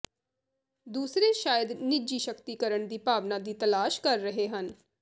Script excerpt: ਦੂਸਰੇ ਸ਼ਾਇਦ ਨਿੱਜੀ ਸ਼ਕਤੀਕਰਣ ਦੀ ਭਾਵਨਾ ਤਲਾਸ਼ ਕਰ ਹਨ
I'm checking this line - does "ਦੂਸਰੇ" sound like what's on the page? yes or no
yes